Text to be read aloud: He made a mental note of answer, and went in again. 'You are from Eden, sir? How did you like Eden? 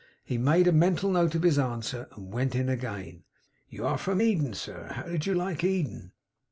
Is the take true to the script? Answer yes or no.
no